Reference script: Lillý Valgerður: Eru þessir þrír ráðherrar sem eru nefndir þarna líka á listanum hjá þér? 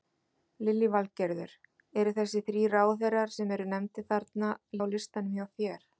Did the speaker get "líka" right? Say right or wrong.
wrong